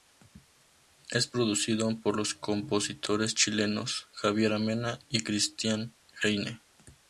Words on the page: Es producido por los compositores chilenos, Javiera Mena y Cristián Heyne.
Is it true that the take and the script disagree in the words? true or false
false